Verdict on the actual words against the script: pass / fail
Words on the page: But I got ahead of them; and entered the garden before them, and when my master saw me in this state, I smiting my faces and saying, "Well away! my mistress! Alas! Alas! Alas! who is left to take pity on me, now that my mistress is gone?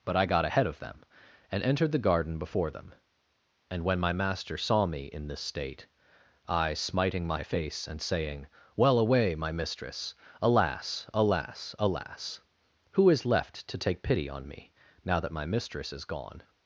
fail